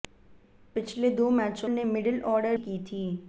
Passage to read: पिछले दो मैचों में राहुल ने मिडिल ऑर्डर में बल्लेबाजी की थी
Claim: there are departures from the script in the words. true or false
true